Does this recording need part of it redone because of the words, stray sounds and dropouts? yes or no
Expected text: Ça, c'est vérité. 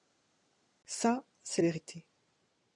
no